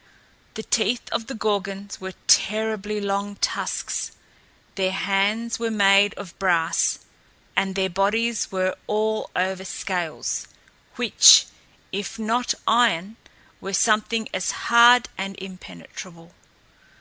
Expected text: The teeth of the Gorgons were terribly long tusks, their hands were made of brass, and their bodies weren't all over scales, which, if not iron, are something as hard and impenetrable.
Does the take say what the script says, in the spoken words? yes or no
no